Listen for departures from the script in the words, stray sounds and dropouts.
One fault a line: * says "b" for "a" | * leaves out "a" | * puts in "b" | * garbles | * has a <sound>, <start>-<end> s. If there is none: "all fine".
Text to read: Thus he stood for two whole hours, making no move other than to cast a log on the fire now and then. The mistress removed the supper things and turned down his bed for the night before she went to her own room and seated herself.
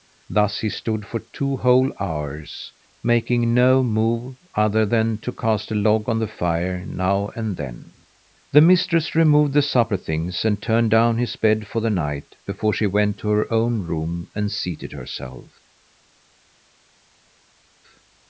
all fine